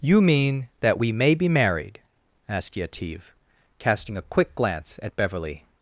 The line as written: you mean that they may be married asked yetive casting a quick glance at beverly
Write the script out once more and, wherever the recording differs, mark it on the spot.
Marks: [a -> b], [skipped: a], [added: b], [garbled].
you mean that [they -> we] may be married asked yetive casting a quick glance at beverly